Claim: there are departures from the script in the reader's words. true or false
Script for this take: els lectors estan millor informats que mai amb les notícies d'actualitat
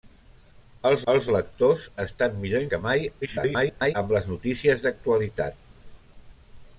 true